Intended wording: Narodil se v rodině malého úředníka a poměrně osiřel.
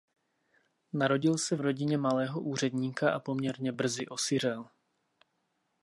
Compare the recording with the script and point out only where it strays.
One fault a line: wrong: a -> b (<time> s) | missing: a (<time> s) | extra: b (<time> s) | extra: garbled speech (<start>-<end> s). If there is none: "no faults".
extra: brzy (3.7 s)